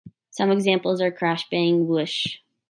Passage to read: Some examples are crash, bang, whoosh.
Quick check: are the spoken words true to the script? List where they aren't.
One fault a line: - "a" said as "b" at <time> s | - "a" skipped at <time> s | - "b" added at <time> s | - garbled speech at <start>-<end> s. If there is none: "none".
none